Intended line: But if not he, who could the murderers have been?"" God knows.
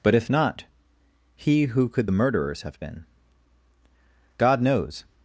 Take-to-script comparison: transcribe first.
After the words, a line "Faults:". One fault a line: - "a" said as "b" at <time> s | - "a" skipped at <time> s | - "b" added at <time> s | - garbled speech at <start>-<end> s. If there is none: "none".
But if not he, who could the murderers have been?"" God knows.
Faults:
none